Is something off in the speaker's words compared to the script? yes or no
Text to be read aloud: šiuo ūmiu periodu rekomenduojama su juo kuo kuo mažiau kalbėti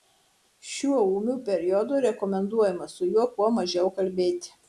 yes